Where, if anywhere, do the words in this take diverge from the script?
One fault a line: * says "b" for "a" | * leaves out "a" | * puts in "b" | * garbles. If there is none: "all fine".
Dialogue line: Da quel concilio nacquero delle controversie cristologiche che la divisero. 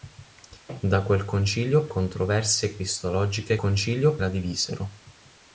* leaves out "nacquero delle"
* says "concilio" for "che"